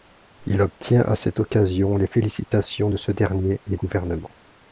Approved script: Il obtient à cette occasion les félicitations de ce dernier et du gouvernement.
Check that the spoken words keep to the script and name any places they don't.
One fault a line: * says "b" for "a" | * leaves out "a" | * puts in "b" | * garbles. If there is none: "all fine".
* leaves out "du"